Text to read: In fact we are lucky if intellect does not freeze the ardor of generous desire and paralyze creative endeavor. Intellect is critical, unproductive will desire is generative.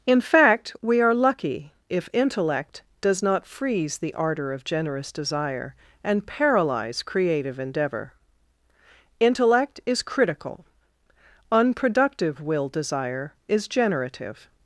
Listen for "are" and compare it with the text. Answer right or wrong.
right